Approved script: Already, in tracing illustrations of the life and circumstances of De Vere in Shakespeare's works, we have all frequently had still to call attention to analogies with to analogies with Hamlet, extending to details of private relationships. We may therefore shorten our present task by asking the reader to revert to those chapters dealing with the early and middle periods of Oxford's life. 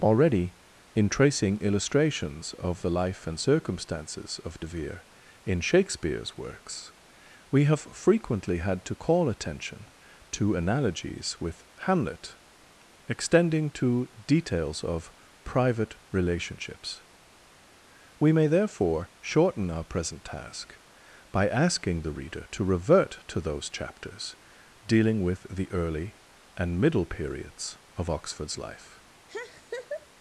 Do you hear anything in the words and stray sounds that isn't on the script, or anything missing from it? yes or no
yes